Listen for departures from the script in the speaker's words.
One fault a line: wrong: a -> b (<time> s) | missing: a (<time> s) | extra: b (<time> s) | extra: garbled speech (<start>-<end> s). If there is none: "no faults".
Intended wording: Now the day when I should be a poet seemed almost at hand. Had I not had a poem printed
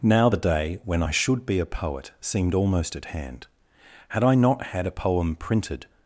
no faults